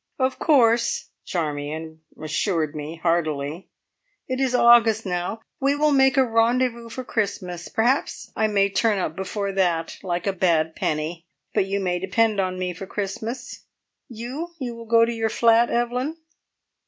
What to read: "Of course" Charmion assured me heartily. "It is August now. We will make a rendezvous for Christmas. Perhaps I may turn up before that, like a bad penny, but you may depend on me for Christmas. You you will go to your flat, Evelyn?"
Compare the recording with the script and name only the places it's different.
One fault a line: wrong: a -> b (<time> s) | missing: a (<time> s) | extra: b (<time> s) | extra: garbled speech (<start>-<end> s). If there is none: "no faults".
no faults